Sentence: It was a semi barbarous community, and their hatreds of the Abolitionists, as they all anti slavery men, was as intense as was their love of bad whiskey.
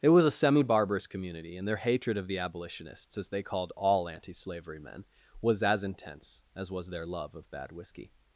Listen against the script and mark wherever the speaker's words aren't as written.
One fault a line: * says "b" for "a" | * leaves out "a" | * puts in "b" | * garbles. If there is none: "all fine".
* says "hatred" for "hatreds"
* puts in "called"